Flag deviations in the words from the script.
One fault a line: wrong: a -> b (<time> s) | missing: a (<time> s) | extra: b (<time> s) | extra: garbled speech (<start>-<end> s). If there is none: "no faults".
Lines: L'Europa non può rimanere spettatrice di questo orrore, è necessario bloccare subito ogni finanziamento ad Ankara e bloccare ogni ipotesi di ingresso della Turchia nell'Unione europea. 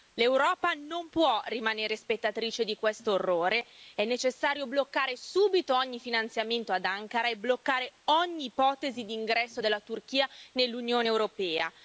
no faults